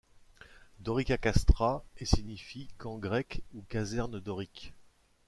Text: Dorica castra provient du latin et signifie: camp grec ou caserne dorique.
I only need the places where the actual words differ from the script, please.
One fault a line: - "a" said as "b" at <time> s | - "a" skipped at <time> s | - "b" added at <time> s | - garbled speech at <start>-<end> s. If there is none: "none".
- "provient du latin" skipped at 1.8 s